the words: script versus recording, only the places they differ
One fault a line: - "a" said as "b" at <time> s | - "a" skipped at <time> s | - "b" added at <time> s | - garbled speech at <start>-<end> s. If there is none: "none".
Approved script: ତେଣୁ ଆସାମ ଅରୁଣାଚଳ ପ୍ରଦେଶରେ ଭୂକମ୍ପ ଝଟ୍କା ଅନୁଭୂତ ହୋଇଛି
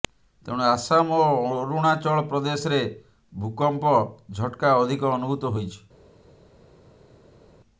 - "ଓ" added at 1.2 s
- "ଅଧିକ" added at 4.8 s